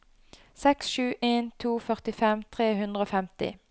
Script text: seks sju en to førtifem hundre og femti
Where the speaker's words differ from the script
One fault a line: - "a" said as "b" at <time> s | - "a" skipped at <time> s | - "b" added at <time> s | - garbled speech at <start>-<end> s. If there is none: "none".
- "tre" added at 2.6 s